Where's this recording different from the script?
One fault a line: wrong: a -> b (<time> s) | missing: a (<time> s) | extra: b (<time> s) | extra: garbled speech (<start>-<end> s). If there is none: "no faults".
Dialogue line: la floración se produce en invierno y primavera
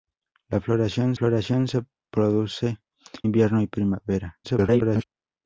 extra: floración (1.1 s)
missing: en (2.8 s)
extra: garbled speech (4.4-5.0 s)